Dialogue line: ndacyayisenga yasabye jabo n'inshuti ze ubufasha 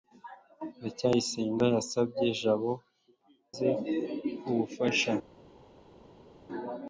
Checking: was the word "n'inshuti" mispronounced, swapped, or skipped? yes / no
yes